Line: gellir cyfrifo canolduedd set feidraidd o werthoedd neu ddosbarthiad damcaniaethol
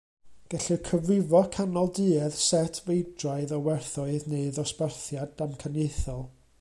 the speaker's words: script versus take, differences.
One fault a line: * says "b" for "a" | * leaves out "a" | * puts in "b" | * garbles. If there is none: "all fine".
all fine